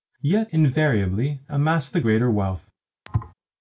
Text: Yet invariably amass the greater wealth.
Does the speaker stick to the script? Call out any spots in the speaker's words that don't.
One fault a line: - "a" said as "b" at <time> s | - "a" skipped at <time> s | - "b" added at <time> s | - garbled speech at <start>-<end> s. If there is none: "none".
none